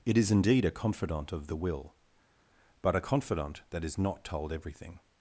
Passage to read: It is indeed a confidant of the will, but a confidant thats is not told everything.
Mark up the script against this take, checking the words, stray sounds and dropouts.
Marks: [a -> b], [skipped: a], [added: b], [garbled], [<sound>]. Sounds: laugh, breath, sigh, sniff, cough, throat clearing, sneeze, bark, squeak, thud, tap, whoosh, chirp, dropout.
It is indeed a confidant of the will, but a confidant [thats -> that] is not told everything.